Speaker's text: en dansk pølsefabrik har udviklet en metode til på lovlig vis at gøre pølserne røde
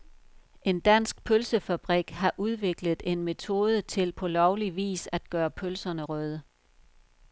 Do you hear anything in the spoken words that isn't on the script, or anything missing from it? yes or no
no